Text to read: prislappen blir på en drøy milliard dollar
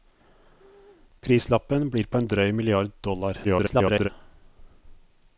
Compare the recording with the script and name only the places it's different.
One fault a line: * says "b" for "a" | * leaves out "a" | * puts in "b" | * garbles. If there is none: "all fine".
* garbles